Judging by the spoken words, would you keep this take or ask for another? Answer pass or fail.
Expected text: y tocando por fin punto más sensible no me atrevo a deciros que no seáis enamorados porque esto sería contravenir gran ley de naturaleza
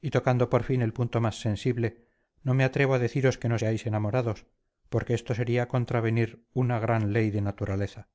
fail